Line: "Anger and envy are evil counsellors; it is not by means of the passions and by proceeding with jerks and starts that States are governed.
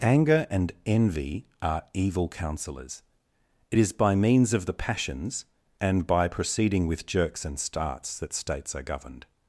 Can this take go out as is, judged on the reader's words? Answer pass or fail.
fail